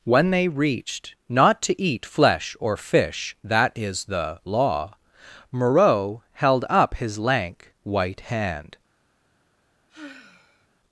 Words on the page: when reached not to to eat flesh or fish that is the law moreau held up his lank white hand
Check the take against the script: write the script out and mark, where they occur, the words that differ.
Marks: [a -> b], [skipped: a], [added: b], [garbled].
when [added: they] reached not to [skipped: to] eat flesh or fish that is the law moreau held up his lank white hand